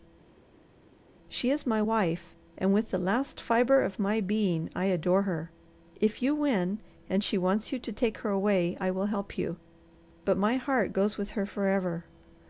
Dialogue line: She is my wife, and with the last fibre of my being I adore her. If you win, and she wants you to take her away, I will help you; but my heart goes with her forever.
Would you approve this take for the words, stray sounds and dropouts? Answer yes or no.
yes